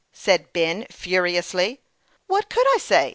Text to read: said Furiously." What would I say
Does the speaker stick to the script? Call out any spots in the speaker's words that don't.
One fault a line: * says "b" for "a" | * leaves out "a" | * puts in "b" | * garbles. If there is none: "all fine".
* puts in "Ben"
* says "could" for "would"